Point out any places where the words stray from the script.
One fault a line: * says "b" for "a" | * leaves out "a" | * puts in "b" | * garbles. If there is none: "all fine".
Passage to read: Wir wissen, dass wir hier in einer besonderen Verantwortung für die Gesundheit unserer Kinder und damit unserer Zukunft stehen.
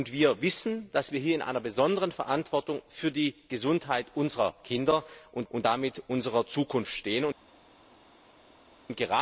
* puts in "und"